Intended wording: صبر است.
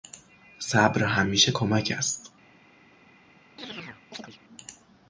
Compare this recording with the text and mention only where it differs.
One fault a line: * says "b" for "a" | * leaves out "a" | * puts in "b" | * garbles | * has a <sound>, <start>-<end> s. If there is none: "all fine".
* puts in "همیشه کمک"
* has a chirp, 3.6-4.4 s